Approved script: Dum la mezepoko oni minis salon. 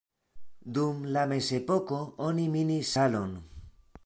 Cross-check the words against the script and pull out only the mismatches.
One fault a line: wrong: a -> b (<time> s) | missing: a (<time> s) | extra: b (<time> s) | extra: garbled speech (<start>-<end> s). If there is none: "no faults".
no faults